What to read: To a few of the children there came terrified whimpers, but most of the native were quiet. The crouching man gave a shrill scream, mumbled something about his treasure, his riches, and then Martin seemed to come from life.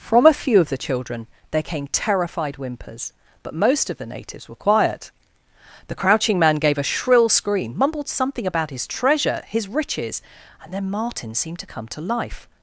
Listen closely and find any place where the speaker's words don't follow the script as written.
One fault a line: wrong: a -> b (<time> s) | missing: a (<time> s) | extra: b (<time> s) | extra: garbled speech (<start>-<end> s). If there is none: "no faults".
wrong: To -> From (0.0 s)
wrong: native -> natives (4.1 s)
wrong: from -> to (11.9 s)